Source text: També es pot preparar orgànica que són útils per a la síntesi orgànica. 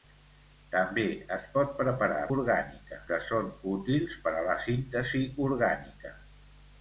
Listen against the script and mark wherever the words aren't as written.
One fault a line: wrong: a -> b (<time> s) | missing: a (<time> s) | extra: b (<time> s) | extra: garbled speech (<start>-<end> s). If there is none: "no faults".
no faults